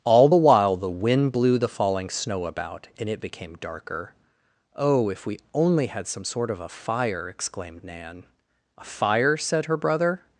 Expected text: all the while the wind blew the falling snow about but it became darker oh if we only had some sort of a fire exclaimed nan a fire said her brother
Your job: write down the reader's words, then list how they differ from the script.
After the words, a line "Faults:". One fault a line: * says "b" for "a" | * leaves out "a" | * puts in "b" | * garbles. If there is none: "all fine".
all the while the wind blew the falling snow about and it became darker oh if we only had some sort of a fire exclaimed nan a fire said her brother
Faults:
* says "and" for "but"